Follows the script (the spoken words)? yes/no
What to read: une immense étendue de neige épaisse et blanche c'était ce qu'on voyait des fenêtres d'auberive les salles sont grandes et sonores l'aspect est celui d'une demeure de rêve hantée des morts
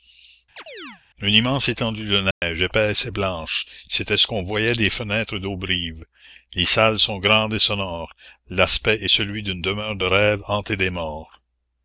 yes